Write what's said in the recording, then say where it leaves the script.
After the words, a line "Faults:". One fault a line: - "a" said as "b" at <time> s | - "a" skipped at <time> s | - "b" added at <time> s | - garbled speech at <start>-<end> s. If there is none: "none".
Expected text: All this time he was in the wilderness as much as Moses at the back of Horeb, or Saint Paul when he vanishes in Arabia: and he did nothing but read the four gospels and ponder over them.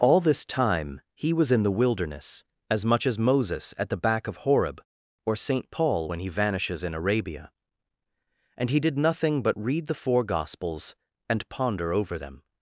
All this time he was in the wilderness as much as Moses at the back of Horeb, or Saint Paul when he vanishes in Arabia: and he did nothing but read the four gospels and ponder over them.
Faults:
none